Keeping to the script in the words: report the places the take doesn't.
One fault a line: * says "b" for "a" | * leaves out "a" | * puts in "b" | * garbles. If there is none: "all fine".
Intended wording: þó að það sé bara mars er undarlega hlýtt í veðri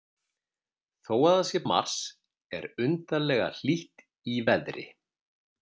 * leaves out "bara"